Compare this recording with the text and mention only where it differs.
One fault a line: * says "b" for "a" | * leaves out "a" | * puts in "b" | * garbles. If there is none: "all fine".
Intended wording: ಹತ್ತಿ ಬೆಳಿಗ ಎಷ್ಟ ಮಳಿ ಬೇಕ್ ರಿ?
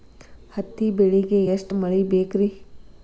all fine